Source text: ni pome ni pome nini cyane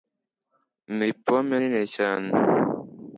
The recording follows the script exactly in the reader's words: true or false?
false